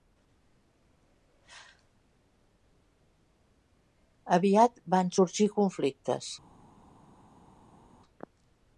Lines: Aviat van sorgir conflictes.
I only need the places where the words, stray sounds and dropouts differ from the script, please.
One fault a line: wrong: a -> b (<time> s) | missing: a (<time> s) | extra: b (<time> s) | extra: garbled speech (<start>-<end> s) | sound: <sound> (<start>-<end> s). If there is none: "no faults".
no faults